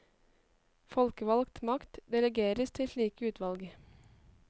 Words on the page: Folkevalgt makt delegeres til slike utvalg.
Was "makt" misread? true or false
false